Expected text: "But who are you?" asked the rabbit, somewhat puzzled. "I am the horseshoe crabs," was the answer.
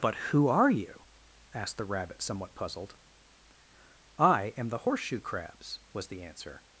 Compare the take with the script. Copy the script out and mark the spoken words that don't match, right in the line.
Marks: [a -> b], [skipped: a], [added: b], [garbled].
"But who are you?" asked the rabbit, somewhat puzzled. "I am the horseshoe crabs," was the answer.